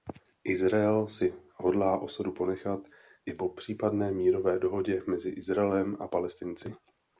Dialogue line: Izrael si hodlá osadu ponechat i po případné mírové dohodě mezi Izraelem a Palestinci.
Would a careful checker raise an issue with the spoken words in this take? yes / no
no